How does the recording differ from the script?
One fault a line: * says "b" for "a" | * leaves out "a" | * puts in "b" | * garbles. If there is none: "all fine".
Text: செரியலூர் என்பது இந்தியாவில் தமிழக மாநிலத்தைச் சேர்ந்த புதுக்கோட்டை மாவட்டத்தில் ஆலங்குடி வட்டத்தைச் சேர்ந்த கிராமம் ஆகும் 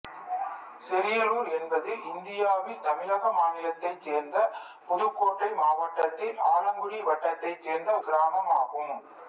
all fine